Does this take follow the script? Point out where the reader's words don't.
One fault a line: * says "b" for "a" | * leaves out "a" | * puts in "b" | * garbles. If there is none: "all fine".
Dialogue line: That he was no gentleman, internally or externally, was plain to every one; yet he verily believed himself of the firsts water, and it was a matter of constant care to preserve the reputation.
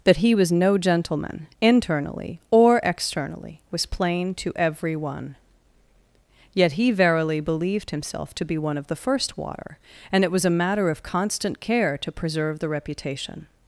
* puts in "to be one"
* says "first" for "firsts"